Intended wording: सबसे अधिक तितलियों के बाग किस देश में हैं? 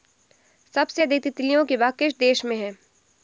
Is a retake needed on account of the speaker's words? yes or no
no